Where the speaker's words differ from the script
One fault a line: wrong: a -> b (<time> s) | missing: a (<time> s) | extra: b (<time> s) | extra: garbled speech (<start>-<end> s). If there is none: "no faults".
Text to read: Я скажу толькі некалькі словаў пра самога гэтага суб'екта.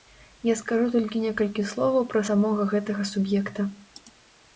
no faults